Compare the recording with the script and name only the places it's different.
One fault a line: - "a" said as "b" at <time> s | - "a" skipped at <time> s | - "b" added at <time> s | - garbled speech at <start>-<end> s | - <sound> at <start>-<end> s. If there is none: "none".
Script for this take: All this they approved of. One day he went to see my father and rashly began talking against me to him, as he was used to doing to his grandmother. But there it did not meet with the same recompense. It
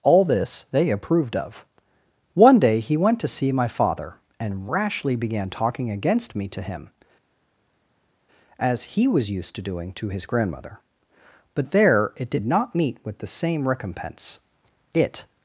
none